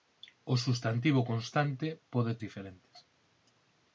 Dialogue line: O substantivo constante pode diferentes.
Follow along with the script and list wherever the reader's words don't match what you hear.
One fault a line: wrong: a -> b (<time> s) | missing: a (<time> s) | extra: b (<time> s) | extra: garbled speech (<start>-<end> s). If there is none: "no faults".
no faults